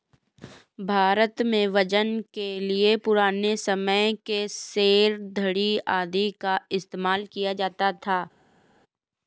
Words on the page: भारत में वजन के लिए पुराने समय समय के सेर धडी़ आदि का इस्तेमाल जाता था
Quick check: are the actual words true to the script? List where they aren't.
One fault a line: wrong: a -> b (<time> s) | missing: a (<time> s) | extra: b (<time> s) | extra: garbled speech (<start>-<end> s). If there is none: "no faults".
missing: समय (4.1 s)
extra: किया (7.3 s)